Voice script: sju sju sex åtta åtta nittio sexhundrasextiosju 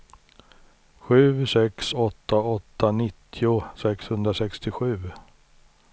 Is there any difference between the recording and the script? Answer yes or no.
yes